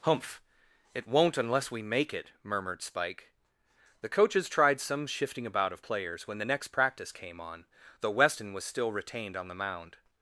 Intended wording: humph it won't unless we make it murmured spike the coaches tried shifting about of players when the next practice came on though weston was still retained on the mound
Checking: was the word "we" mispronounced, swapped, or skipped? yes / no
no